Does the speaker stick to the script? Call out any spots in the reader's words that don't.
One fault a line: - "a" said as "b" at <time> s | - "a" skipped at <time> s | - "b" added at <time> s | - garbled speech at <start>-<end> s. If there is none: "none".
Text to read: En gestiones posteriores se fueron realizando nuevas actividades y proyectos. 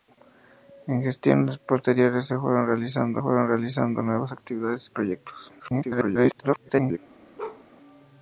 - "fueron realizando" added at 3.2 s
- garbled speech at 5.6-7.0 s